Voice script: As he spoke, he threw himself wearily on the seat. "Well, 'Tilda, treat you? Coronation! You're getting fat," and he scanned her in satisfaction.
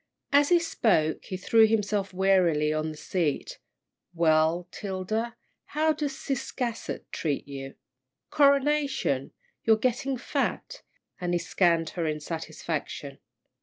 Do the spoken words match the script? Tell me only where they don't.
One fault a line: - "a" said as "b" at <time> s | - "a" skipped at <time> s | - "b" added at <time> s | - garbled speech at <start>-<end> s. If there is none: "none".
- "how does Ciscasset" added at 5.7 s